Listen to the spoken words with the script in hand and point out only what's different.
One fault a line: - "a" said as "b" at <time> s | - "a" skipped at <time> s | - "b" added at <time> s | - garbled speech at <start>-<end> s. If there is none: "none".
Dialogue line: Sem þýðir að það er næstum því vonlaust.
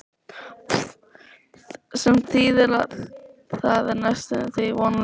none